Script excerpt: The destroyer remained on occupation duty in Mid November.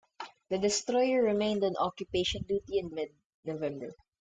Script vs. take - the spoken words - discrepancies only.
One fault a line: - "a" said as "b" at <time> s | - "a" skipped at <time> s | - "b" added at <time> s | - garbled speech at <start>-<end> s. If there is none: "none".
none